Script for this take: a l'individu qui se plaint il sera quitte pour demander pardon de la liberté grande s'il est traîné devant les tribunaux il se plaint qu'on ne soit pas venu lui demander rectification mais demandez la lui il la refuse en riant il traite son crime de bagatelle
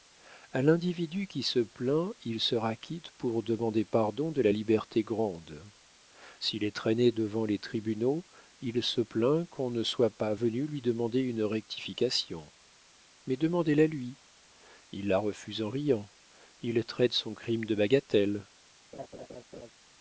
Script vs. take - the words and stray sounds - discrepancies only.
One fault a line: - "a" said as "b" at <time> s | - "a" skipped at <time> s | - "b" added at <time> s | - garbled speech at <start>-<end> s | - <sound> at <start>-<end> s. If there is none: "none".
- "une" added at 11.2 s
- laugh at 18.9-19.7 s